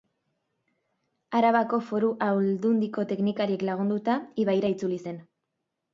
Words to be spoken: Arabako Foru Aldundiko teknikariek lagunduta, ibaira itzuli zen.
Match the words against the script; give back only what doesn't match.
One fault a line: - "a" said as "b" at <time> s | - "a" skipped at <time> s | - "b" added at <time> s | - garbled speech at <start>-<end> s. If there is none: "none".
none